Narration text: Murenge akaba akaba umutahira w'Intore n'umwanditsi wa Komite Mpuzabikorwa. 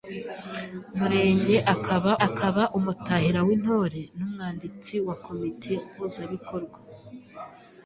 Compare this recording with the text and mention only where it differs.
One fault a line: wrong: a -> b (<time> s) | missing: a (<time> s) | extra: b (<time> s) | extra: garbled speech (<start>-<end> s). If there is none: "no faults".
no faults